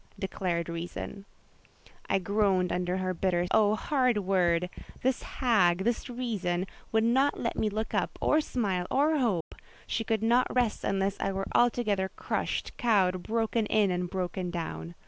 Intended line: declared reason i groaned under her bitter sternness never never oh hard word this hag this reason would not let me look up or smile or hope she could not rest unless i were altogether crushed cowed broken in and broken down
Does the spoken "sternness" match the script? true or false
false